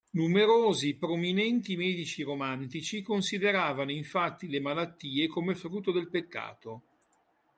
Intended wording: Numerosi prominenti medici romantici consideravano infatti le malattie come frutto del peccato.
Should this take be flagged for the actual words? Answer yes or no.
no